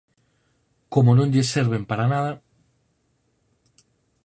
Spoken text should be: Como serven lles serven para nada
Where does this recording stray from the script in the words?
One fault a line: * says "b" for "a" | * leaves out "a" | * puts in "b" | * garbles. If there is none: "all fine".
* says "non" for "serven"